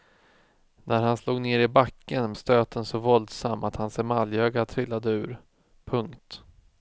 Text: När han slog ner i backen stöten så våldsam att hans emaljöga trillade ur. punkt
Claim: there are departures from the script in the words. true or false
false